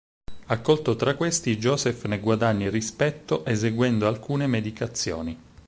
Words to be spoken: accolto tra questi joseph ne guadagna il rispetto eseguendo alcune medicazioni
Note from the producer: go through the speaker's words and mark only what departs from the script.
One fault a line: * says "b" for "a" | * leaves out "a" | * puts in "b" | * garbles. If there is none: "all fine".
all fine